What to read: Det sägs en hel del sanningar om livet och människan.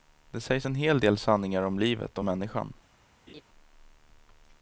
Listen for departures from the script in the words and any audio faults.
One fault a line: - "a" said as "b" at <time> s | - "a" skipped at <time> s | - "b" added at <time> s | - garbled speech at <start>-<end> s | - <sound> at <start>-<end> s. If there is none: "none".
- laugh at 3.3-3.4 s